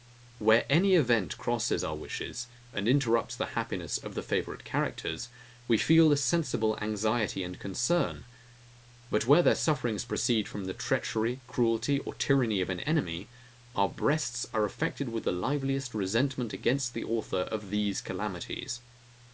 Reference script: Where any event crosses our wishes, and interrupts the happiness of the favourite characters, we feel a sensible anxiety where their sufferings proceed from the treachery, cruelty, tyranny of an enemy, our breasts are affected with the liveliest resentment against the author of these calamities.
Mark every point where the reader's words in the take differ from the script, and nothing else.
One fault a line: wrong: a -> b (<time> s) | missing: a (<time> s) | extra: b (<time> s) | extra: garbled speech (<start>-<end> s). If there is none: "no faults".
extra: and concern But (7.4 s)
extra: or (12.0 s)